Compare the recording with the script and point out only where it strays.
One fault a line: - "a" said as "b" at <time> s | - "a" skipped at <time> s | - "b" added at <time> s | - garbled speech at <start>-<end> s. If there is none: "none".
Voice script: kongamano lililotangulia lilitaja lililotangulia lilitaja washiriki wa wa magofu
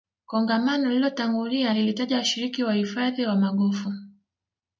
- "lililotangulia lilitaja" skipped at 2.2 s
- "uhifadhi" added at 2.7 s